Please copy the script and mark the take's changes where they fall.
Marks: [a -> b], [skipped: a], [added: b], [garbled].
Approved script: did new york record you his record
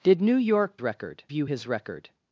did new york record you his record